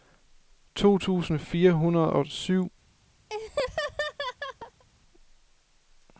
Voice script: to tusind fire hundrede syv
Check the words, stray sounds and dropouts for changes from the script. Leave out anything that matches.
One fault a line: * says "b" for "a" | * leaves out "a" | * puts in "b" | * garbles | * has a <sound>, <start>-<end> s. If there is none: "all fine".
* puts in "og"
* has a laugh, 3.3-4.8 s